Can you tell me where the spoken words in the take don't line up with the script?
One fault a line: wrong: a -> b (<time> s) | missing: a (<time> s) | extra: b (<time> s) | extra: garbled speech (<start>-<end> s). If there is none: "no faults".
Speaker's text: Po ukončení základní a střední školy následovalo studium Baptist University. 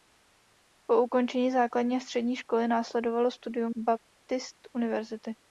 no faults